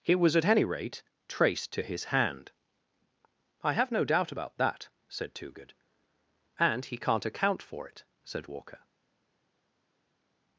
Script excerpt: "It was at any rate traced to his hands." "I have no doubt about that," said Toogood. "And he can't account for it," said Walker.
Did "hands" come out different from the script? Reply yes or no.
yes